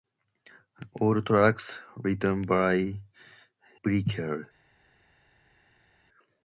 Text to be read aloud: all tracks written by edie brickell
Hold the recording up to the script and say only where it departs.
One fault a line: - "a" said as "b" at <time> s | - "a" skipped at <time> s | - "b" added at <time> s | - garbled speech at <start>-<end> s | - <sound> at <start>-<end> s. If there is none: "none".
- "edie" skipped at 3.0 s